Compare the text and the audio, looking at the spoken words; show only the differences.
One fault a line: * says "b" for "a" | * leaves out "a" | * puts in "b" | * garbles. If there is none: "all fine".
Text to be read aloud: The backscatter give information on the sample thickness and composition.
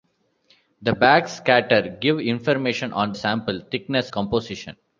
* leaves out "the"
* leaves out "and"